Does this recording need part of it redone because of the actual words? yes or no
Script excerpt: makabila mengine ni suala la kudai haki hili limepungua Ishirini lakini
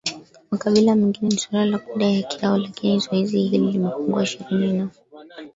yes